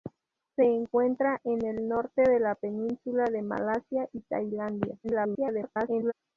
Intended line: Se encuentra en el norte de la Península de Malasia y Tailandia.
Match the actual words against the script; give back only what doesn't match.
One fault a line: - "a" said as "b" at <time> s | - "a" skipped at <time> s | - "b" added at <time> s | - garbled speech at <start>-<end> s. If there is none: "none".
- garbled speech at 5.0-6.1 s